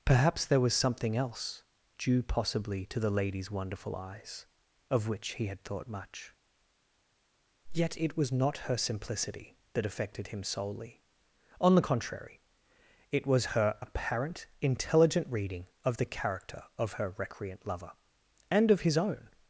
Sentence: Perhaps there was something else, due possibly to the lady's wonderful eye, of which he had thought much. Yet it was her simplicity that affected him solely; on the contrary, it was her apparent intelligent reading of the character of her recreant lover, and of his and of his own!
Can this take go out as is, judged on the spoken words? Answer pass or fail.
fail